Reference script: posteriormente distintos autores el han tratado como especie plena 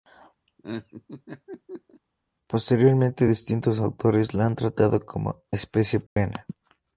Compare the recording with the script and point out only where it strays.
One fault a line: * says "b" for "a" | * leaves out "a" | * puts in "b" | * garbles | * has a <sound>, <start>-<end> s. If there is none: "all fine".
* has a laugh, 0.5-2.0 s
* says "la" for "el"
* has a dropout, 6.1-6.2 s